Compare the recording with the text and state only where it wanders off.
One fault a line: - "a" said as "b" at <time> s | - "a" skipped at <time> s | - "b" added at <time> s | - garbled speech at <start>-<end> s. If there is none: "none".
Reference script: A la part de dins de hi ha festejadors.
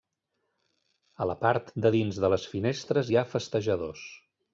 - "les finestres" added at 2.4 s